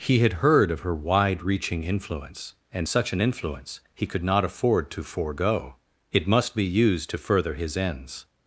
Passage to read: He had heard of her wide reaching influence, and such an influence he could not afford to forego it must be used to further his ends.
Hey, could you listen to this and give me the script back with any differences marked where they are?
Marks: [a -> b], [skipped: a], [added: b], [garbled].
He had heard of her wide reaching influence, and such an influence he could not afford to forego it must be used to further his ends.